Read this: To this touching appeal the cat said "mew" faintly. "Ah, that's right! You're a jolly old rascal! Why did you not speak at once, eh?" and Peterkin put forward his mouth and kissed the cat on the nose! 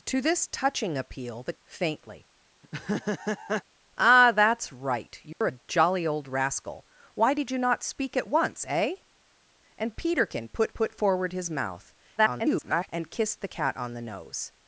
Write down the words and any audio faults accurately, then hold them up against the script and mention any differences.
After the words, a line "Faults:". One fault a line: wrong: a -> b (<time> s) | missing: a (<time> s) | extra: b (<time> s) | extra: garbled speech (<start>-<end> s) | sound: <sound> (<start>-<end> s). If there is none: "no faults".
To this touching appeal the" faintly. "Ah, that's right! You're a jolly old rascal! Why did you not speak at once, eh?" and Peterkin put put forward his mouth [garbled] and kissed the cat on the nose!
Faults:
missing: cat said mew (1.5 s)
sound: laugh (2.6-3.6 s)
sound: dropout (5.3-5.4 s)
extra: put (10.7 s)
extra: garbled speech (12.2-12.9 s)